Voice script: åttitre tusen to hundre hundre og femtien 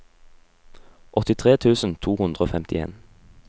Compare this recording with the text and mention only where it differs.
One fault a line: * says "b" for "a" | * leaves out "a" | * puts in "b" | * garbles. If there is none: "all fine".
* leaves out "hundre"